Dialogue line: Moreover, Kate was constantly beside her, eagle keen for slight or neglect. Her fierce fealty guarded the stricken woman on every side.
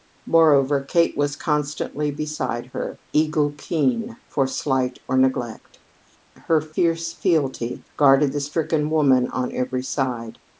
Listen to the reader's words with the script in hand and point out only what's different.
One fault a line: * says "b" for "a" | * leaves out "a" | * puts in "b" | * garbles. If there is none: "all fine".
all fine